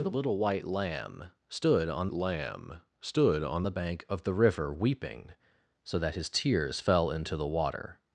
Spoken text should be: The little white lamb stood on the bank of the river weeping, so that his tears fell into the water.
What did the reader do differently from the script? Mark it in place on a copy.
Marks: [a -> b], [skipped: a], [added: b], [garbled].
The little white lamb stood on [added: lamb stood on] the bank of the river weeping, so that his tears fell into the water.